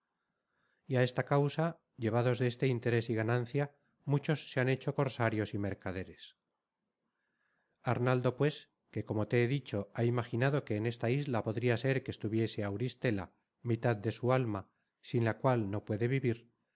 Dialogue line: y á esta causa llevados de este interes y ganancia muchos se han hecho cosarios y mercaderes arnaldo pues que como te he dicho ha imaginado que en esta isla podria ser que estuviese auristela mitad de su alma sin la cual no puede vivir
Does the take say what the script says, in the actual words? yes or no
yes